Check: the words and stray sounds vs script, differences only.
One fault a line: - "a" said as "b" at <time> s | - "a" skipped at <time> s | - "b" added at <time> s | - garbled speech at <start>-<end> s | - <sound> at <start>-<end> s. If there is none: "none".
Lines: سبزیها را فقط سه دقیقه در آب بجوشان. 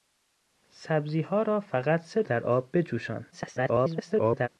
- "دقیقه" skipped at 2.2 s
- garbled speech at 3.3-4.5 s